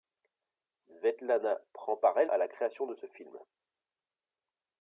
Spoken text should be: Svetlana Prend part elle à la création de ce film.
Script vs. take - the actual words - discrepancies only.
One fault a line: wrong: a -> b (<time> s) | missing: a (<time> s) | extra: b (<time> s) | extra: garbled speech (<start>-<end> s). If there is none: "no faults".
no faults